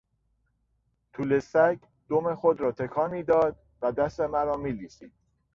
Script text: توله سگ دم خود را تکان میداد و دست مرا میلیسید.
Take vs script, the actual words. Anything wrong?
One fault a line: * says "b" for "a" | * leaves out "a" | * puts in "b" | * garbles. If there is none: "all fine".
all fine